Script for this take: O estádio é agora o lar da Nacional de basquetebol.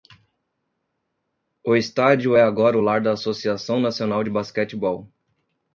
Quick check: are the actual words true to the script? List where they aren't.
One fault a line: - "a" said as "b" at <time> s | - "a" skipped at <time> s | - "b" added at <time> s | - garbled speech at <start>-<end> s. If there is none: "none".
- "Associação" added at 3.1 s